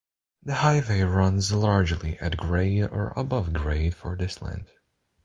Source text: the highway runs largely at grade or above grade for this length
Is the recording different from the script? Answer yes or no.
no